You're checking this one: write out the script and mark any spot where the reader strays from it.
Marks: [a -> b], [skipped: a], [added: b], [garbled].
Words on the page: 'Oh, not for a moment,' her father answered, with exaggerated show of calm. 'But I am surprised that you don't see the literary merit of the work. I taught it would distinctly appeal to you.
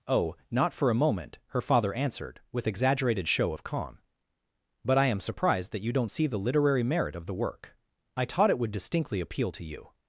'Oh, not for a moment,' her father answered, with exaggerated show of calm. 'But I am surprised that you don't see the literary merit of the work. I taught it would distinctly appeal to you.